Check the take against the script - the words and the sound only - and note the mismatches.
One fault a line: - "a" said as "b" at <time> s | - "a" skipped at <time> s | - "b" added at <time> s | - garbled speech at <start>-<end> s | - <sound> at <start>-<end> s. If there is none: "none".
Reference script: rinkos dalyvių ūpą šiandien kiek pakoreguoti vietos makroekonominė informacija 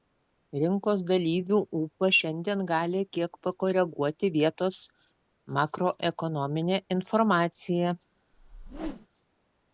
- "gali" added at 2.7 s
- whoosh at 8.3-9.1 s